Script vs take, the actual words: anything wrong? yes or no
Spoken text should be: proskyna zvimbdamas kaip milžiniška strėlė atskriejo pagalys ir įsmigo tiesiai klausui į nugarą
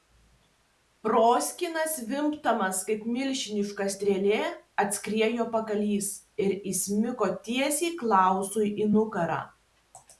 no